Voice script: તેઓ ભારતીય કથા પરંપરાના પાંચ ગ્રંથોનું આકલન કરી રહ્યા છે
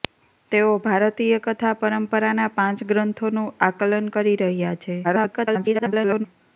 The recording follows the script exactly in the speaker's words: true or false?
false